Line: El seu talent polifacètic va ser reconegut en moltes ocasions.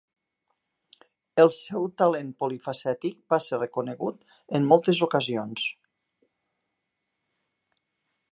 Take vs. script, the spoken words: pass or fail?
pass